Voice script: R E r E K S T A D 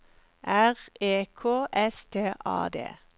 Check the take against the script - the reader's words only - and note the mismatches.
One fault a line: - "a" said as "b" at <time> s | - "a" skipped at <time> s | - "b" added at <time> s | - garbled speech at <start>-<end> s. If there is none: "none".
- "r E" skipped at 1.3 s